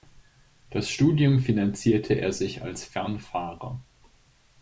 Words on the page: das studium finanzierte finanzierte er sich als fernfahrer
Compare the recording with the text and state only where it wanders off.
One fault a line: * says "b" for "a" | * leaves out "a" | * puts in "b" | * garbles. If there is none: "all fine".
* leaves out "finanzierte"